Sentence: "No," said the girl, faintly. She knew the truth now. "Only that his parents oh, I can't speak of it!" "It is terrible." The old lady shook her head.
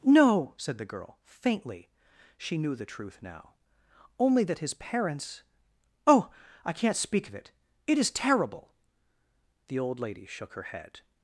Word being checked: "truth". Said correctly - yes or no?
yes